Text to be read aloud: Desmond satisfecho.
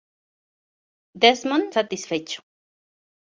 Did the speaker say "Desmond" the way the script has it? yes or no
yes